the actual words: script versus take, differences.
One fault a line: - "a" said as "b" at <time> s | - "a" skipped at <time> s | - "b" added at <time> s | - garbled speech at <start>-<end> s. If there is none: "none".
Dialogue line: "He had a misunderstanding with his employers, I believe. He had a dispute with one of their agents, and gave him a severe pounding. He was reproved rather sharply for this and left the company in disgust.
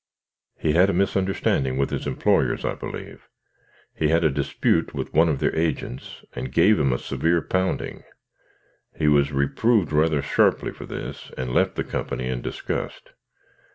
none